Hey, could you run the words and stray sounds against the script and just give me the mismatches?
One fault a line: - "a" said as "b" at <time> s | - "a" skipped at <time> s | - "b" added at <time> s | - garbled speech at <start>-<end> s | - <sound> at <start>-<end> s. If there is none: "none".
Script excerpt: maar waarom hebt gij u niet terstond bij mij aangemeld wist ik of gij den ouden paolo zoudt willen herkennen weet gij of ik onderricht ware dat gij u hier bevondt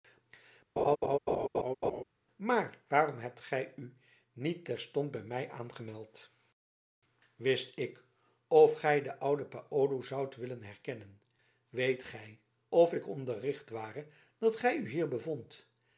- laugh at 0.8-2.0 s